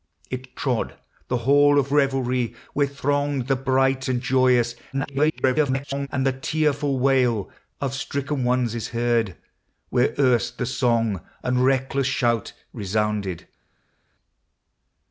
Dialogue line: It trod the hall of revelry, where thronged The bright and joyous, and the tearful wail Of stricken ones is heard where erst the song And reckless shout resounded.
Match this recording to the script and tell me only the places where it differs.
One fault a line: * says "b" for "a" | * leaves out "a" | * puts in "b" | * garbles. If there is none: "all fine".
* garbles